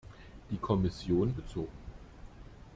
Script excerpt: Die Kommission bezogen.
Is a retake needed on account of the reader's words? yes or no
no